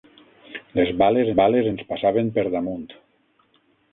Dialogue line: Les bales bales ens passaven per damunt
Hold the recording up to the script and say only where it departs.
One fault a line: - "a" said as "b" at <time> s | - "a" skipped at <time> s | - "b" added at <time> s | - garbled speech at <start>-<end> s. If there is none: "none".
none